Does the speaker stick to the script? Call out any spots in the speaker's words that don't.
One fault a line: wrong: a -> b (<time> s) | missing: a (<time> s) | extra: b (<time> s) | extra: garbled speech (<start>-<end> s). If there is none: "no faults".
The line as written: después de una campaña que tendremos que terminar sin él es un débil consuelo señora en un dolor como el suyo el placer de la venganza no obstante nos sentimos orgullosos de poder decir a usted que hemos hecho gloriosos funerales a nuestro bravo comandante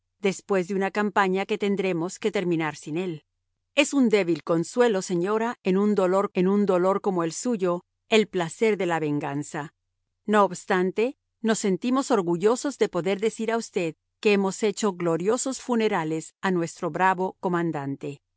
extra: en un dolor (6.3 s)